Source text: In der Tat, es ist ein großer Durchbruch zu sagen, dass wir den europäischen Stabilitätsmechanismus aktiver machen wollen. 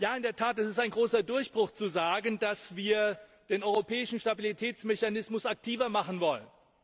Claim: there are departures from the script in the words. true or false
false